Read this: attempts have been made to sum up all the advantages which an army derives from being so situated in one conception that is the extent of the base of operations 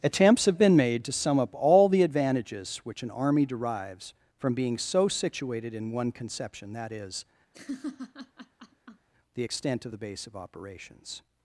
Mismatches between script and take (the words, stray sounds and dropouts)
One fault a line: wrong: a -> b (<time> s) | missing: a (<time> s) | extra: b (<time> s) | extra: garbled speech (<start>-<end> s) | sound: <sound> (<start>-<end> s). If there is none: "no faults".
sound: laugh (7.5-9.1 s)